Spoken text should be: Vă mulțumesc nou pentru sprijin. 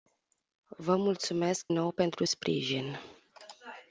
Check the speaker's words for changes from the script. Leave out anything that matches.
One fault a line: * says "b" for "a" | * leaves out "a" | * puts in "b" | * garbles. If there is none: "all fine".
all fine